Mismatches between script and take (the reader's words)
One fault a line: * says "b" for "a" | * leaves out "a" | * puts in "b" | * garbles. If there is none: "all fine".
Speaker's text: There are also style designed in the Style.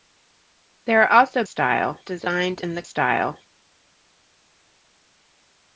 all fine